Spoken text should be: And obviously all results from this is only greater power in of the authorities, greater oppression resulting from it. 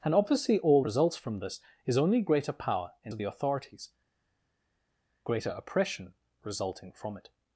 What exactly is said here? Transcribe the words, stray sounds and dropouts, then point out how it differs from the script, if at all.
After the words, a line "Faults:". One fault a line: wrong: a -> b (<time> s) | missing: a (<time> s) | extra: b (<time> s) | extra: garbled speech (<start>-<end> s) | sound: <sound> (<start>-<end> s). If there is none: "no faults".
And obviously all results from this is only greater power in of the authorities, greater oppression resulting from it.
Faults:
no faults